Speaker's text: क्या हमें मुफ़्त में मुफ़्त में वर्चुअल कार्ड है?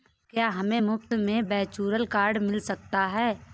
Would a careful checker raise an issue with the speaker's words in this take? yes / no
yes